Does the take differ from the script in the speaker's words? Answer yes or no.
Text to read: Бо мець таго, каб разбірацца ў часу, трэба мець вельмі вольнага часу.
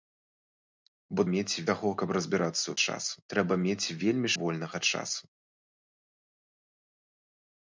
no